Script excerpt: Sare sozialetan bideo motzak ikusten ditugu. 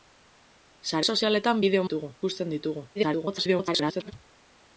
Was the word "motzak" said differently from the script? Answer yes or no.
yes